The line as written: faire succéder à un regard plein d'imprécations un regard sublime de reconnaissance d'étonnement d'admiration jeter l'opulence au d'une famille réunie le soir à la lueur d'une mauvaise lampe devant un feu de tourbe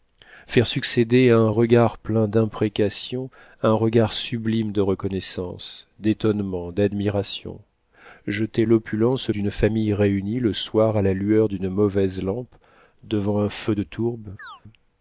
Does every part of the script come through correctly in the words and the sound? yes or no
no